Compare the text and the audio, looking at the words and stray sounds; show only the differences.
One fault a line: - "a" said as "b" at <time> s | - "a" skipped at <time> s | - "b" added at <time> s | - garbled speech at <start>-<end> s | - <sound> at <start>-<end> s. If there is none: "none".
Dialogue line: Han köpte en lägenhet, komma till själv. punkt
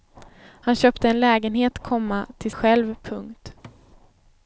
- thud at 3.6-3.8 s